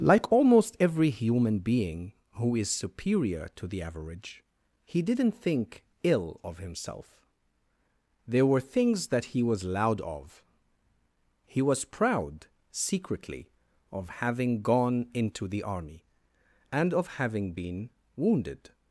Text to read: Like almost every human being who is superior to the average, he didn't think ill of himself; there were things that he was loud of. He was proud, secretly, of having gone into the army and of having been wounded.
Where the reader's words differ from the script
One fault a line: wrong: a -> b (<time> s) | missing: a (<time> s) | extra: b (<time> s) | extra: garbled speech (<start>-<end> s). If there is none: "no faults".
no faults